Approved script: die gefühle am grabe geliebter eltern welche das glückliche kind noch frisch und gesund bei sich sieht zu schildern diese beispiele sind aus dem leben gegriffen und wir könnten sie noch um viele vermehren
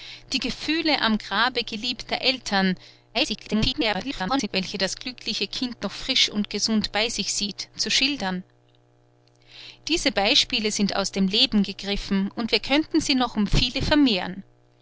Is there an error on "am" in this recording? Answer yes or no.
no